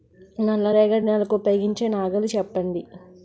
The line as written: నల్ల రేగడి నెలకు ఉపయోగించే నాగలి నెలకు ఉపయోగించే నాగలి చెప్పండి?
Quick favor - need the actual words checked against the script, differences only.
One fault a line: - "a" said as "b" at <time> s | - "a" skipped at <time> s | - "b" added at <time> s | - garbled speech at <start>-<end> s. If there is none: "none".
- "నెలకు ఉపయోగించే నాగలి" skipped at 2.3 s